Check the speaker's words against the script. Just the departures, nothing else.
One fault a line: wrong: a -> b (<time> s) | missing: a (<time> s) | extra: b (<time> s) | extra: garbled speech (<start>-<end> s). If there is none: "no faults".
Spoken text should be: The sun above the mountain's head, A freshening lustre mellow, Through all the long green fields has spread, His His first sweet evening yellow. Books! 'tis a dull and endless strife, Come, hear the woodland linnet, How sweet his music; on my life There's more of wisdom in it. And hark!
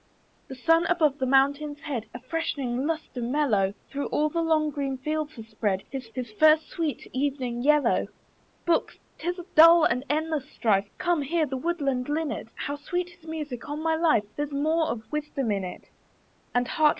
no faults